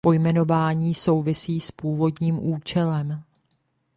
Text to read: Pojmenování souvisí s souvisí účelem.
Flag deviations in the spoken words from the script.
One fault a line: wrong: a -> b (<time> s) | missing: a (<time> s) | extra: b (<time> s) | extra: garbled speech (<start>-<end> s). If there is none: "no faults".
wrong: souvisí -> původním (1.7 s)